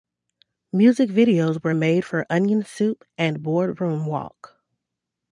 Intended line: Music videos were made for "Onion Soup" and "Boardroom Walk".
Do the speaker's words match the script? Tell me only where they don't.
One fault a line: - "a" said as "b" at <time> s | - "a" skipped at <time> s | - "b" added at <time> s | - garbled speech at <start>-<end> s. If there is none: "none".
none